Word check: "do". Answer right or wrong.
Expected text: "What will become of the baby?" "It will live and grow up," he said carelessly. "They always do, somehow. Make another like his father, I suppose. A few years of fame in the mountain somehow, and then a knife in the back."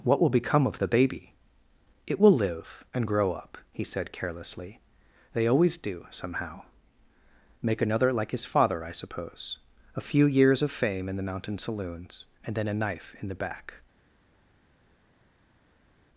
right